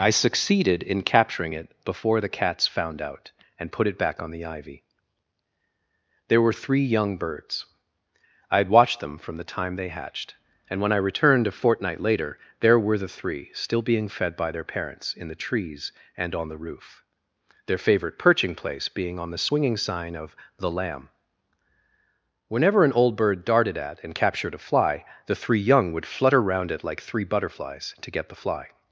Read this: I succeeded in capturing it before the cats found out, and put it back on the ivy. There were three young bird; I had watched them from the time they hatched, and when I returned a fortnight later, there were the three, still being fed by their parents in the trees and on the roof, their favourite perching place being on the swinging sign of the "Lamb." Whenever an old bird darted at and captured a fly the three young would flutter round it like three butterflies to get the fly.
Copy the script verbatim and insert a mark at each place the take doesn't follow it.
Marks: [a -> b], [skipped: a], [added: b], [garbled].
I succeeded in capturing it before the cats found out, and put it back on the ivy. There were three young [bird; -> birds] I had watched them from the time they hatched, and when I returned a fortnight later, there were the three, still being fed by their parents in the trees and on the roof, their favourite perching place being on the swinging sign of the "Lamb." Whenever an old bird darted at and captured a fly the three young would flutter round it like three butterflies to get the fly.